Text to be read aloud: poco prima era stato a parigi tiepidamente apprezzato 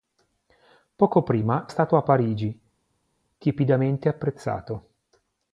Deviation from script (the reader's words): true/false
true